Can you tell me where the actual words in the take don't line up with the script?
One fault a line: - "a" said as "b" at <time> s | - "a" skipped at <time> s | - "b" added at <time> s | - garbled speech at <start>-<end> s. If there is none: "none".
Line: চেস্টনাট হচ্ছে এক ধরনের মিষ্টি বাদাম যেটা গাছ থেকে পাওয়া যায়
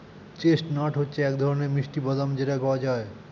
- "গাছ থেকে" skipped at 2.5 s